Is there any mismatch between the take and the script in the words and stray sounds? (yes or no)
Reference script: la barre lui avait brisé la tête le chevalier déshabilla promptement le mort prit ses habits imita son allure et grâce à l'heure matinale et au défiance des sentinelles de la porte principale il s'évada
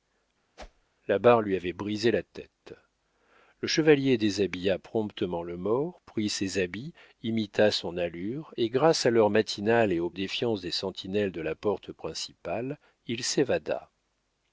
yes